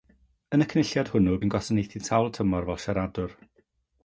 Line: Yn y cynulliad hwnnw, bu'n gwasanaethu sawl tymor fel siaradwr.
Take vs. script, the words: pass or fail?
pass